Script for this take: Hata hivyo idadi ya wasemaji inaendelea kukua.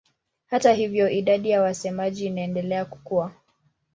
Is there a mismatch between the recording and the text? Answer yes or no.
no